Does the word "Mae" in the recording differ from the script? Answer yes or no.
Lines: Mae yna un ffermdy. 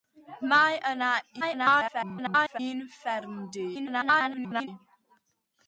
no